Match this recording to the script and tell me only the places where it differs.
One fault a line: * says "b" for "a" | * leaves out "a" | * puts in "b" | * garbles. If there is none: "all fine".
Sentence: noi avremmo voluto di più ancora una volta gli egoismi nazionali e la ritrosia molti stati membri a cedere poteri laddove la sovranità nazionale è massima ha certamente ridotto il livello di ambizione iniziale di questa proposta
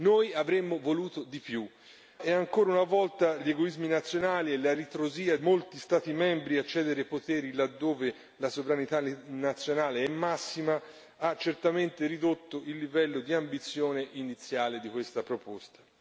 all fine